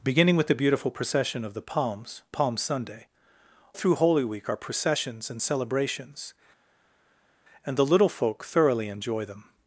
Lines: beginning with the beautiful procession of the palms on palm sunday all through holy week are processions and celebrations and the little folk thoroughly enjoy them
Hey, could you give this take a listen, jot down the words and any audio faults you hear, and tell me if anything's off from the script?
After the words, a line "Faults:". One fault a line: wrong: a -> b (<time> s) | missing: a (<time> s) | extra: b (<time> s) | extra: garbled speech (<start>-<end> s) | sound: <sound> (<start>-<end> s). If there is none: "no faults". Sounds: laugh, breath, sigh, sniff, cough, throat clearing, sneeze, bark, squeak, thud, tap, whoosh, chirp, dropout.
beginning with the beautiful procession of the palms palm sunday through holy week are processions and celebrations and the little folk thoroughly enjoy them
Faults:
missing: on (2.2 s)
missing: all (3.1 s)